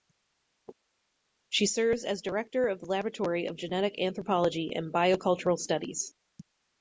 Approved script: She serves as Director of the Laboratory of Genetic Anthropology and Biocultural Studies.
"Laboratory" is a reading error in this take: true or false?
false